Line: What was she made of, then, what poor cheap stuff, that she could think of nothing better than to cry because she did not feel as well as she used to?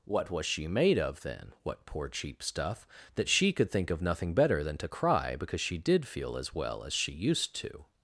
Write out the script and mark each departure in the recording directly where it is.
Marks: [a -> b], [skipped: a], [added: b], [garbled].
What was she made of, then, what poor cheap stuff, that she could think of nothing better than to cry because she did [skipped: not] feel as well as she used to?